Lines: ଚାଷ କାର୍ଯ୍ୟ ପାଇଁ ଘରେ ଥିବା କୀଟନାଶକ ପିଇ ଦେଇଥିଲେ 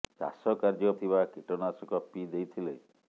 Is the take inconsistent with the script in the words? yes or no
yes